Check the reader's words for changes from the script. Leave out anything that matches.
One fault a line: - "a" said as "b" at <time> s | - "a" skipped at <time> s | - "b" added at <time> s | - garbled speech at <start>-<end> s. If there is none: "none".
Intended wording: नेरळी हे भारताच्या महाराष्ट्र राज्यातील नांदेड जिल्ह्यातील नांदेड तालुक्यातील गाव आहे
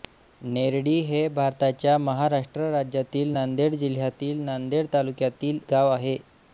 none